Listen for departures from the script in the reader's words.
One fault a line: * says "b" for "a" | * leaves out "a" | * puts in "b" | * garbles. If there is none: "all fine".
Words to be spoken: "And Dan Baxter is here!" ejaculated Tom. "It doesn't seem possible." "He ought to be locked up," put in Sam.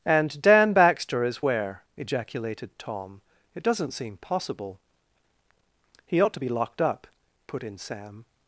* says "where" for "here"